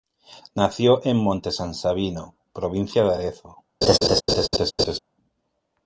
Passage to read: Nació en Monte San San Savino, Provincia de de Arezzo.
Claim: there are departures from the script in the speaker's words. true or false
true